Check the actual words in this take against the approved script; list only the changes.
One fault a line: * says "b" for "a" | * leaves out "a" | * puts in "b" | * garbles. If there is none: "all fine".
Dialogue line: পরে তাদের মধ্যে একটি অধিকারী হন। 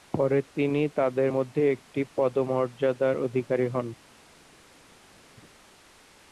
* puts in "তিনি"
* puts in "পদমর্যাদার"